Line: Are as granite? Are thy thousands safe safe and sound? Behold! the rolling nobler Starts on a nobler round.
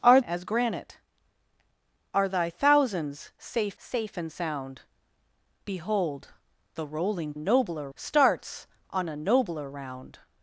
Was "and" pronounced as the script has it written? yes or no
yes